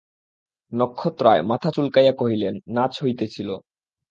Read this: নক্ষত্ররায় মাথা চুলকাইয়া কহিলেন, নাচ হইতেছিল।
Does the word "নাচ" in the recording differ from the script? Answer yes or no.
no